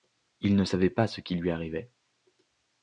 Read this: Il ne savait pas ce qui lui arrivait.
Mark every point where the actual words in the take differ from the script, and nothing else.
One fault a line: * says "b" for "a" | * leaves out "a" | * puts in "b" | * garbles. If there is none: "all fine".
all fine